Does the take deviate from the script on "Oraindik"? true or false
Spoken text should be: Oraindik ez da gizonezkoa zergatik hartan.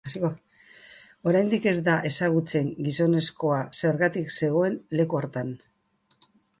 false